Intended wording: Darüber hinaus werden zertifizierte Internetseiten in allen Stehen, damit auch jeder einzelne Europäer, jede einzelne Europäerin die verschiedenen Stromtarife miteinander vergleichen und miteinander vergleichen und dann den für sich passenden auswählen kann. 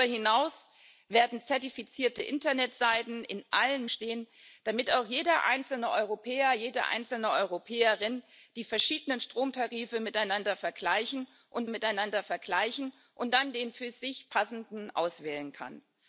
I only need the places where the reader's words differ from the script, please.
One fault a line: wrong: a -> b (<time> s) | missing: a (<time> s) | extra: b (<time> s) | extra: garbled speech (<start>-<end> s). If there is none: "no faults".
no faults